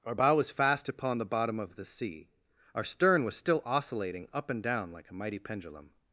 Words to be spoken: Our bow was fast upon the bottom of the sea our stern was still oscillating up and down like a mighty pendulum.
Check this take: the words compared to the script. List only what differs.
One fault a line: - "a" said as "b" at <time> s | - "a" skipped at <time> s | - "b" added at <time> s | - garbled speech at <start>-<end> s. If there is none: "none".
none